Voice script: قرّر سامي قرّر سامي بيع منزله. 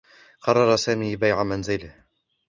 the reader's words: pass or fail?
fail